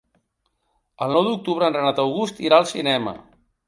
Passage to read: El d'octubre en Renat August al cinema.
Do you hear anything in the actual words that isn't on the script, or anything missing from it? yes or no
yes